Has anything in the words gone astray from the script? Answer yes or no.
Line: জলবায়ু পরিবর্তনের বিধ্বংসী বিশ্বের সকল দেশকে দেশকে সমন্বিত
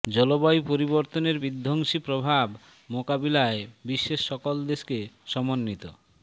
yes